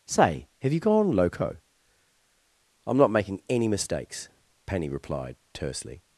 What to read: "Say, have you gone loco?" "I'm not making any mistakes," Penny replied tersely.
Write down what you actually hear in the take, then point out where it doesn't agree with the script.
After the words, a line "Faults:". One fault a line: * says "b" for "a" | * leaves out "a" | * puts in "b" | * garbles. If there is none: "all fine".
"Say, have you gone loco?" "I'm not making any mistakes," Penny replied tersely.
Faults:
all fine